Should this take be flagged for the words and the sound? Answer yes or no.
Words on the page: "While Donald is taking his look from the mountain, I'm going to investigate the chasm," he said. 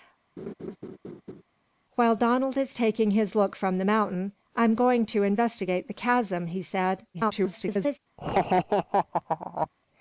yes